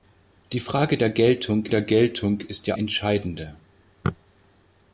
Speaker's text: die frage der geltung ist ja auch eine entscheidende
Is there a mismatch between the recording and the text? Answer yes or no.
yes